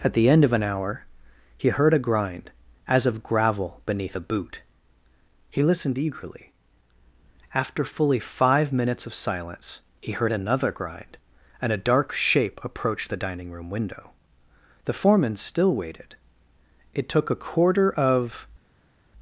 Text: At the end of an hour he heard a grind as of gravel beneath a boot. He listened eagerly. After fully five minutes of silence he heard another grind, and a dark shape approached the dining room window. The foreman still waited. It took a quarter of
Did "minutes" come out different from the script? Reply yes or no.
no